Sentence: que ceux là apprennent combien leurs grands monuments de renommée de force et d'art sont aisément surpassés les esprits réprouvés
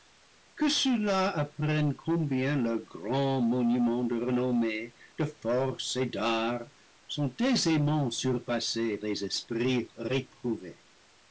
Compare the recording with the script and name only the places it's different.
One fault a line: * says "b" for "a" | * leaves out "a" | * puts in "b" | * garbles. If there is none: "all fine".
all fine